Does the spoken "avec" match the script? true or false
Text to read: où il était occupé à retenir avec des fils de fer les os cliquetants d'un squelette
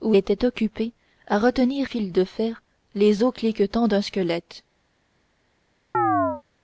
false